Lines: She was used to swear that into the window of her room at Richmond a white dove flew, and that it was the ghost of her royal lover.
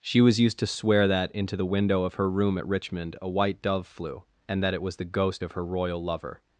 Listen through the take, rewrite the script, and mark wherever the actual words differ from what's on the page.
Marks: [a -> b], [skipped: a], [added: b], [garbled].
She was used to swear that into the window of her room at Richmond a white dove flew, and that it was the ghost of her royal lover.